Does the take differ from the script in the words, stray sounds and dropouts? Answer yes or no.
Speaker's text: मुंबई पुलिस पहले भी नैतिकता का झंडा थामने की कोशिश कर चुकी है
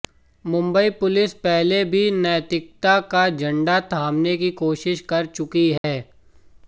yes